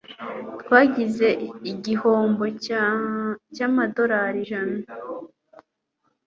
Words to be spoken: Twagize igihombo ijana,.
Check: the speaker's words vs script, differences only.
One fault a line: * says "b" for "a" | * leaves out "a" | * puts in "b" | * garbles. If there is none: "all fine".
* puts in "cyamadorari"